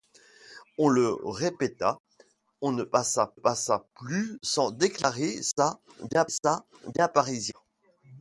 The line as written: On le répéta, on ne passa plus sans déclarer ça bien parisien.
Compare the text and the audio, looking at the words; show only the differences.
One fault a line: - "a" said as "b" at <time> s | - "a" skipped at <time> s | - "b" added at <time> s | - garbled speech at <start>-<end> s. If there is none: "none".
- "passa" added at 3.3 s
- "ça bien" added at 6.3 s